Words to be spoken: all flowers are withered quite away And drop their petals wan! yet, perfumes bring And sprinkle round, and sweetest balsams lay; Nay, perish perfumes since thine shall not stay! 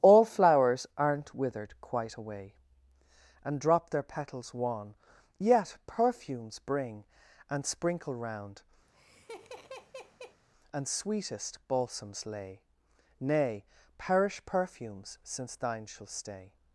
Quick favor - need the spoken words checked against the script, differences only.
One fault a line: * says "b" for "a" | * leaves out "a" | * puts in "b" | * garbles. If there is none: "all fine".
* says "aren't" for "are"
* leaves out "not"